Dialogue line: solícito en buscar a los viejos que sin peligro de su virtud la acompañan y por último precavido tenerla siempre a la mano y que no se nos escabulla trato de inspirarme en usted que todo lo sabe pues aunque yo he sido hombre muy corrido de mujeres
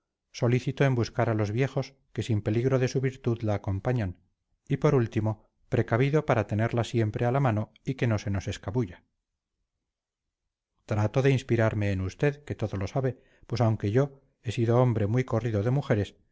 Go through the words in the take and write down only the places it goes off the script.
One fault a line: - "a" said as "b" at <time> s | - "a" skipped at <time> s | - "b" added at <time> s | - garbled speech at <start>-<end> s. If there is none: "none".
- "para" added at 6.3 s